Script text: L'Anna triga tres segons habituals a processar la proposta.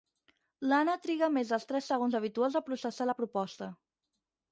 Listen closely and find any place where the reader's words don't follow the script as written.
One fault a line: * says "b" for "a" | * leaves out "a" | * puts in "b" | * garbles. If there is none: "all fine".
* puts in "més dels"